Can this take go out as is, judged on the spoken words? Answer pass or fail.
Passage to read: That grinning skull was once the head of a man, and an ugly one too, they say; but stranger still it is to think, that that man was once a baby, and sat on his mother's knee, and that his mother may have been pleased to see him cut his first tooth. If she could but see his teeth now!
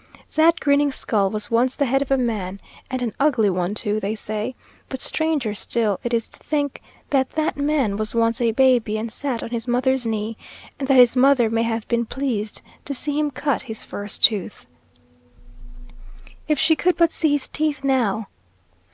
pass